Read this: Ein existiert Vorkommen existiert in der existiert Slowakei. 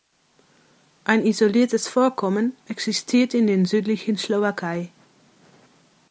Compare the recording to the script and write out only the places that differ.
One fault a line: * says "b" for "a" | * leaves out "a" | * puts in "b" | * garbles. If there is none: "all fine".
* says "isoliertes" for "existiert"
* says "südlichen" for "existiert"